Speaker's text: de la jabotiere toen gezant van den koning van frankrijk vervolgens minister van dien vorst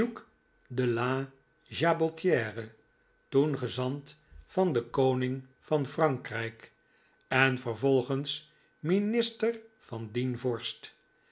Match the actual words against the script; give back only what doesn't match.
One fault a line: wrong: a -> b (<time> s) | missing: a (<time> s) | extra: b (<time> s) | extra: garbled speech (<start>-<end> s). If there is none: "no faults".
extra: en (7.3 s)